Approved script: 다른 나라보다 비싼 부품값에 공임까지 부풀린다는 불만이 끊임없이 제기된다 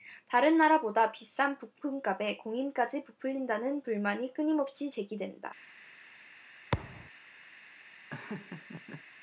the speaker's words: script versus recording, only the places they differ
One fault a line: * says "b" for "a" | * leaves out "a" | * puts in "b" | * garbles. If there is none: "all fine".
all fine